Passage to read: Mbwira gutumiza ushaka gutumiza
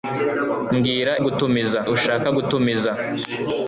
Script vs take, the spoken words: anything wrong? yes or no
no